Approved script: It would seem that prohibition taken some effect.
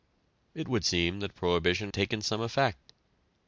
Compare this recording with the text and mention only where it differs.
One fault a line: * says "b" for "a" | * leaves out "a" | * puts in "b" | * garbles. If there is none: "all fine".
all fine